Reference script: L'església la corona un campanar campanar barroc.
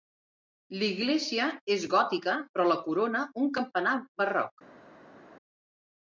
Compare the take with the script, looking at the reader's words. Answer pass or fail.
fail